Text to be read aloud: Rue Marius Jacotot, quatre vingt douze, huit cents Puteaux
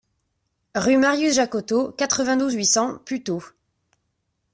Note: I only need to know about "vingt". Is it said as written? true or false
true